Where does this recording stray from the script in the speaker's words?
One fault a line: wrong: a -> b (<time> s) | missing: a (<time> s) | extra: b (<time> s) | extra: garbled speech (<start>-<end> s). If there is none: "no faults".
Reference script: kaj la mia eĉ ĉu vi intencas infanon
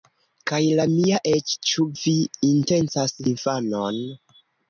no faults